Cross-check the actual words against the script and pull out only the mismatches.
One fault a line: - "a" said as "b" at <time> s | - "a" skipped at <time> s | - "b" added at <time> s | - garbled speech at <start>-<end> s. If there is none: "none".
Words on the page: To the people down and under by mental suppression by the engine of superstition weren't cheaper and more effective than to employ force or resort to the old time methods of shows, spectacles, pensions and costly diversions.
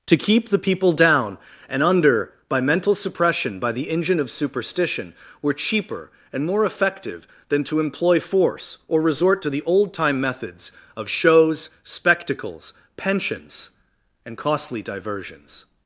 - "keep" added at 0.2 s
- "weren't" said as "were" at 5.4 s